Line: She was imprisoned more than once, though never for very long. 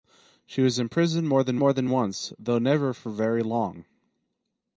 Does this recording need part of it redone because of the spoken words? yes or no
yes